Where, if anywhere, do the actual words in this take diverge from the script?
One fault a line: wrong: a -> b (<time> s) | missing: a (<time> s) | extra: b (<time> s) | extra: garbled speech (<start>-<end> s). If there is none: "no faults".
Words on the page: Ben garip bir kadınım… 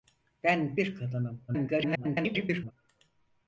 missing: garip (0.8 s)
extra: garbled speech (1.5-2.7 s)